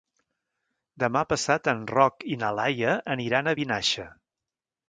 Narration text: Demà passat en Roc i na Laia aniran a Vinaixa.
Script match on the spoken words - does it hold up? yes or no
yes